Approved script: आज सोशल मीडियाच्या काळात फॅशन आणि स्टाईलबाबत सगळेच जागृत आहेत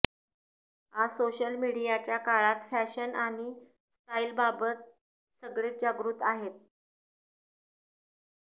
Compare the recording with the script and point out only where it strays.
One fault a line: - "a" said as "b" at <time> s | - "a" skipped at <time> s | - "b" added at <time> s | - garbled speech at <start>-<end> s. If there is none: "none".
none